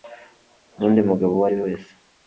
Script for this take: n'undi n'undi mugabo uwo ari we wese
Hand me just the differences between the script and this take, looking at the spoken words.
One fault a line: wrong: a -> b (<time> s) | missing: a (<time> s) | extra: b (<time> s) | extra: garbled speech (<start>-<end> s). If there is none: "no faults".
missing: n'undi (1.0 s)